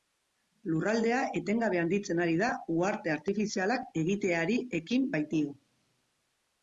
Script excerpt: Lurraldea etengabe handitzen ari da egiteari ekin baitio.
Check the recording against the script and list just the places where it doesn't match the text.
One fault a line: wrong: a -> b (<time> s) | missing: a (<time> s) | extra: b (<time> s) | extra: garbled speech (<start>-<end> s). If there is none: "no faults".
extra: uharte artifizialak (2.8 s)